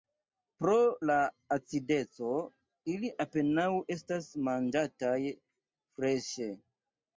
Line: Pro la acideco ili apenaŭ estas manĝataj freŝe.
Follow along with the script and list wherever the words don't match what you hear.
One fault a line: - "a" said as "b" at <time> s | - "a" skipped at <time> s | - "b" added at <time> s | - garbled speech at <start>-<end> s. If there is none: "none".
none